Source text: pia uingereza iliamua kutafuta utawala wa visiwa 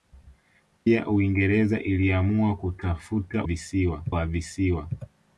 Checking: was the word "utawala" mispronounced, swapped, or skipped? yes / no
yes